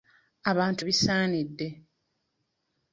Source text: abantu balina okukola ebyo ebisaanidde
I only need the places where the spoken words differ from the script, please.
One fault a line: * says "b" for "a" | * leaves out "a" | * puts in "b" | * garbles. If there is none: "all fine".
* leaves out "balina okukola ebyo"